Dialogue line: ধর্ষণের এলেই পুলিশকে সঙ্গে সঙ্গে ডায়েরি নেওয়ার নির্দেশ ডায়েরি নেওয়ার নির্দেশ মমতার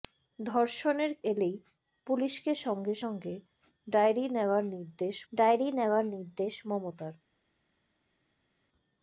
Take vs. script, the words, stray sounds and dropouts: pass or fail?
pass